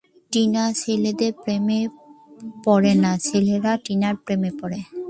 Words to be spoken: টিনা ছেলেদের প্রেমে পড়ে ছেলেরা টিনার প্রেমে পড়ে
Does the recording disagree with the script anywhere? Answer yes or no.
yes